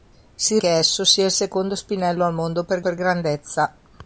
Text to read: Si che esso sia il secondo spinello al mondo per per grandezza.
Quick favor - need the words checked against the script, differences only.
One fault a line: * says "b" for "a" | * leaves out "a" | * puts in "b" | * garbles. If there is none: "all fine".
all fine